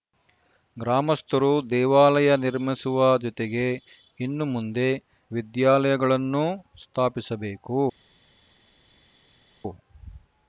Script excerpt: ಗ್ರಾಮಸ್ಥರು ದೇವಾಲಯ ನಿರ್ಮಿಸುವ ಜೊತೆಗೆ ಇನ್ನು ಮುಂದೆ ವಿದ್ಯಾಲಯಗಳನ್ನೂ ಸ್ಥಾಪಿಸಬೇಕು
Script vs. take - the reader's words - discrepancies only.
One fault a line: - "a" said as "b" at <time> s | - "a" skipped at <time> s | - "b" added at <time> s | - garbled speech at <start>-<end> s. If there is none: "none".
none